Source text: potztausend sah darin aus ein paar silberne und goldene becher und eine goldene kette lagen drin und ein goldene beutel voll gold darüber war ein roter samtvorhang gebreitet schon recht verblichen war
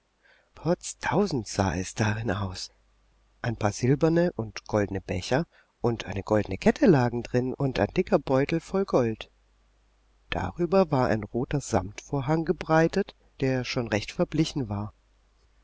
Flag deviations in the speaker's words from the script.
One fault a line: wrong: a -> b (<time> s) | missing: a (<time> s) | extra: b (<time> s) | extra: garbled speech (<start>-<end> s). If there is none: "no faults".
extra: es (1.8 s)
wrong: goldene -> dicker (7.9 s)
extra: der (13.4 s)